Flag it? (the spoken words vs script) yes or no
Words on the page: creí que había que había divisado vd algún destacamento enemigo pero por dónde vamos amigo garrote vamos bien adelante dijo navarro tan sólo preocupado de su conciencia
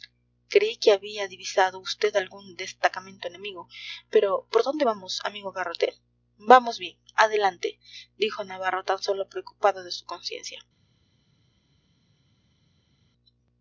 yes